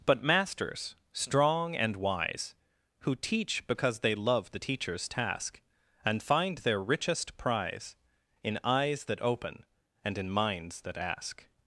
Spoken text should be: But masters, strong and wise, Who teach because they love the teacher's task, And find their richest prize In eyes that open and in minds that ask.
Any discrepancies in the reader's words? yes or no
no